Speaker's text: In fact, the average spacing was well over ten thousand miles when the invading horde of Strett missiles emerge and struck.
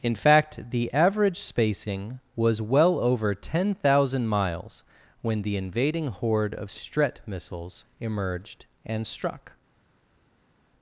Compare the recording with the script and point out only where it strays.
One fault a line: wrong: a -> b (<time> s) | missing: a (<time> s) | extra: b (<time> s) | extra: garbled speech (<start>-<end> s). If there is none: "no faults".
wrong: emerge -> emerged (8.0 s)